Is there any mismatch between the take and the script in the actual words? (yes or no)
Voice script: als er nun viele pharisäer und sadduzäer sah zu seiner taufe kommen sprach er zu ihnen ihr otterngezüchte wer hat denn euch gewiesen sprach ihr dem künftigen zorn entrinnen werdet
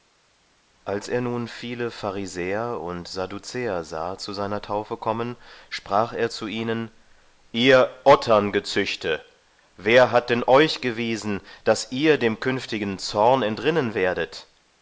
yes